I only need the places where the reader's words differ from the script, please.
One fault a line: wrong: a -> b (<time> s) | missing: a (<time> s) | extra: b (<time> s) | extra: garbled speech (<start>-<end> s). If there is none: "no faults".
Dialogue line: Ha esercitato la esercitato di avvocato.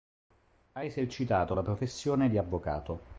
wrong: esercitato -> professione (1.6 s)